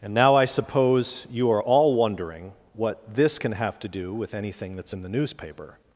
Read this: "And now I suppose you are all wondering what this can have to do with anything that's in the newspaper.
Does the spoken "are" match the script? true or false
true